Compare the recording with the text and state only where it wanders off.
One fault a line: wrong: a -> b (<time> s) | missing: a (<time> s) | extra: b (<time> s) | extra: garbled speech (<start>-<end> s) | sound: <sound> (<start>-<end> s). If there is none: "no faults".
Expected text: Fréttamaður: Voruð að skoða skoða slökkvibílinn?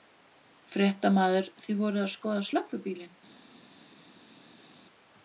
extra: Þið (1.7 s)
missing: skoða (2.5 s)